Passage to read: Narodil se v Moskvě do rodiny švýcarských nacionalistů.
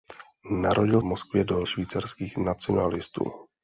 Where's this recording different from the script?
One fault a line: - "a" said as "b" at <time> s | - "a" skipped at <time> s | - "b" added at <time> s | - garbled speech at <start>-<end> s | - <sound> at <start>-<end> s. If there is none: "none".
- "se" skipped at 1.0 s
- "rodiny" skipped at 1.6 s